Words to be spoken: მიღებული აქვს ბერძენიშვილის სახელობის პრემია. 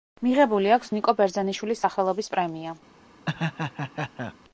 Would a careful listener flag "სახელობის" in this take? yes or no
no